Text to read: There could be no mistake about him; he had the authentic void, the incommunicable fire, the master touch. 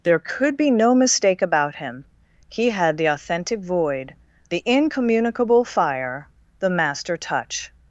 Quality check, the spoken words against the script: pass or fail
pass